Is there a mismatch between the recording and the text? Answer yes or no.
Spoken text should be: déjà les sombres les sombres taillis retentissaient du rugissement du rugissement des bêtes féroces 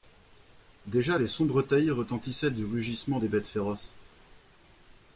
yes